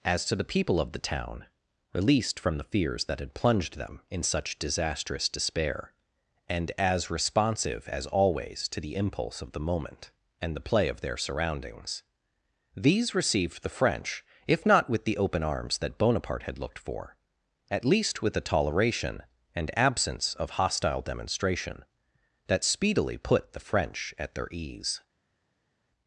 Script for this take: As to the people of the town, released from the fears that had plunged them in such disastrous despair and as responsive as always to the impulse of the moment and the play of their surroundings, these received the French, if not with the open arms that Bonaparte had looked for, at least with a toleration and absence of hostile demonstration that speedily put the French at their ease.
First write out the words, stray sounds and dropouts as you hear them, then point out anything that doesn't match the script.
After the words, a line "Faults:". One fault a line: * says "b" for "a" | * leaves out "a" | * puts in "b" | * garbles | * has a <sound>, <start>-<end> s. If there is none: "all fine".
As to the people of the town, released from the fears that had plunged them in such disastrous despair and as responsive as always to the impulse of the moment and the play of their surroundings, these received the French, if not with the open arms that Bonaparte had looked for, at least with a toleration and absence of hostile demonstration that speedily put the French at their ease.
Faults:
all fine